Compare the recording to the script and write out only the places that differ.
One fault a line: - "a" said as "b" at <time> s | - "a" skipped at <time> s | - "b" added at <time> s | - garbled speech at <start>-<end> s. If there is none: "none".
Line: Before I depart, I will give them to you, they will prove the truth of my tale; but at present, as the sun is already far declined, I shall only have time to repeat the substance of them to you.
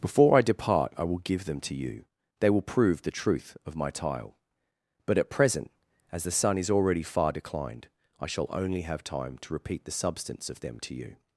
- "tale" said as "tile" at 3.9 s